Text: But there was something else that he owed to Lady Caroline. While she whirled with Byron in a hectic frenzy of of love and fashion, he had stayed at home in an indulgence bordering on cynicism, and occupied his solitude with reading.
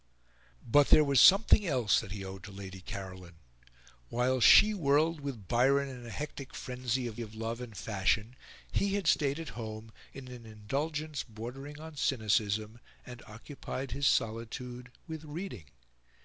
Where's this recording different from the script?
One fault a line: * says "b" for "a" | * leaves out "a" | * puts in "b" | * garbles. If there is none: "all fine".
all fine